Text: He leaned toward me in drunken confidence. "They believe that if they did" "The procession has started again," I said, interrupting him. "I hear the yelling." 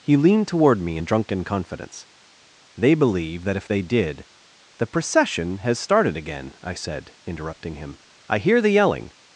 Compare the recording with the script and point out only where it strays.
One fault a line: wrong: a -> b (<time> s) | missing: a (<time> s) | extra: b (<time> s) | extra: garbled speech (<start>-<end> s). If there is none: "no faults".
no faults